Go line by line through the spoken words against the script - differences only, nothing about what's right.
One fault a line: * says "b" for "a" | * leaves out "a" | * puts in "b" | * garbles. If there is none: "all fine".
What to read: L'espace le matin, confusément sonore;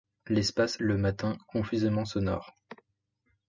all fine